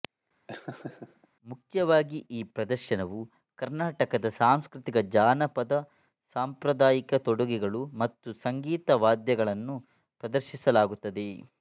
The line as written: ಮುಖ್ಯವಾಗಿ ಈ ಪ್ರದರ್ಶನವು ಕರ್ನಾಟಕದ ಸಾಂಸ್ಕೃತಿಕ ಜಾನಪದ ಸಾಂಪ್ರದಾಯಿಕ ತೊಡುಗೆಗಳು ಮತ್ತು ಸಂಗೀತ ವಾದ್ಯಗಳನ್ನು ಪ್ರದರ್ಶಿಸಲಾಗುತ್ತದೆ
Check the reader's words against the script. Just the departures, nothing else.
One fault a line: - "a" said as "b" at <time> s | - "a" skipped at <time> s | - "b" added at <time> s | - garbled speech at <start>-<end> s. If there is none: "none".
none